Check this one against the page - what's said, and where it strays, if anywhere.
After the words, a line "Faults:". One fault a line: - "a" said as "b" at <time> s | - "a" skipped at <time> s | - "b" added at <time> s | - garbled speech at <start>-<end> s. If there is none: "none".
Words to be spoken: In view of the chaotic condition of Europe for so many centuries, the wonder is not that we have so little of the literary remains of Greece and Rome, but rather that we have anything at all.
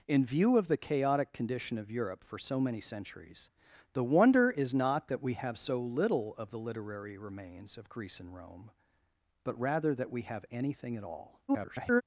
In view of the chaotic condition of Europe for so many centuries, the wonder is not that we have so little of the literary remains of Greece and Rome, but rather that we have anything at all. [garbled]
Faults:
- garbled speech at 11.5-12.0 s